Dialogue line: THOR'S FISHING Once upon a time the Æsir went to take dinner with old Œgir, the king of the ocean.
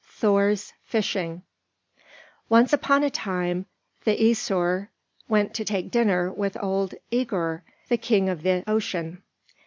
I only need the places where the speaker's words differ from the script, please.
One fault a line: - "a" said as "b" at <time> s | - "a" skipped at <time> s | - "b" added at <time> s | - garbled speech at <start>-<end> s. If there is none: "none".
none